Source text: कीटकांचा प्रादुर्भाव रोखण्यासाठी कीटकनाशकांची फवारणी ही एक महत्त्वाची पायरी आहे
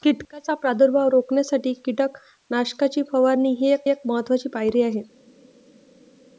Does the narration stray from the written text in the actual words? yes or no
yes